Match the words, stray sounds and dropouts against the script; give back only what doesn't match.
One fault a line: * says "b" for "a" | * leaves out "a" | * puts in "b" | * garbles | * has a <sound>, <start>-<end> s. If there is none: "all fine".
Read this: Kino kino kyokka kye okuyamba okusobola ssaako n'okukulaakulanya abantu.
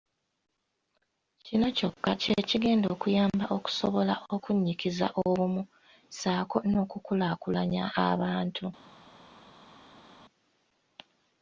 * leaves out "kino"
* puts in "kigenda"
* puts in "okunnyikiza obumu"